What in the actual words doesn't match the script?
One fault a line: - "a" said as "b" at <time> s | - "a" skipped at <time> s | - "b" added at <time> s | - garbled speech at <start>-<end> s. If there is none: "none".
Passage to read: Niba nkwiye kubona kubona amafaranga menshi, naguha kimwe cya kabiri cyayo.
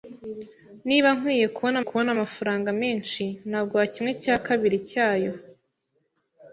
none